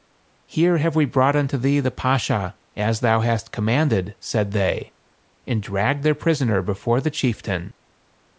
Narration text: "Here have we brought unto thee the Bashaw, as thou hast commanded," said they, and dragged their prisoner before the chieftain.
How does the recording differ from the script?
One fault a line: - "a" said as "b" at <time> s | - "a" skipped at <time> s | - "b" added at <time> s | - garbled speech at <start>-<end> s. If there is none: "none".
none